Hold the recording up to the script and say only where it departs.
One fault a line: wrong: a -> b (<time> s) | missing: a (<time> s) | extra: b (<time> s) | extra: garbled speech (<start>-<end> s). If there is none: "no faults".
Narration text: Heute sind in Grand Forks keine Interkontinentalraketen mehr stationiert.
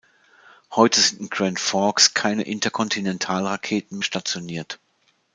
missing: mehr (4.0 s)